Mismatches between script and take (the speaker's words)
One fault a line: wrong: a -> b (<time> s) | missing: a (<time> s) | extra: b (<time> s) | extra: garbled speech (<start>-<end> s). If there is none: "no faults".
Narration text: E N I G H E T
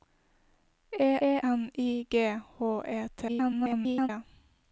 extra: e (1.3 s)
extra: garbled speech (3.3-4.1 s)